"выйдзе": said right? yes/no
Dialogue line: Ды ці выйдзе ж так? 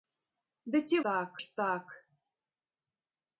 no